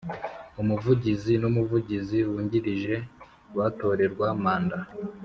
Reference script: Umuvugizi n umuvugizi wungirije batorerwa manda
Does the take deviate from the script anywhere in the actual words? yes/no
no